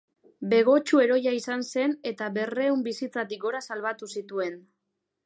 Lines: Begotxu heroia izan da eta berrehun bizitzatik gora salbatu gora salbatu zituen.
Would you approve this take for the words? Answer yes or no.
no